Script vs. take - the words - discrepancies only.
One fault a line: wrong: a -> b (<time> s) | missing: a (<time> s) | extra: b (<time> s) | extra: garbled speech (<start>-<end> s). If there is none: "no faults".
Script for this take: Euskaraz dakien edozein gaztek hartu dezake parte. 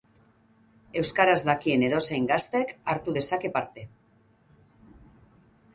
no faults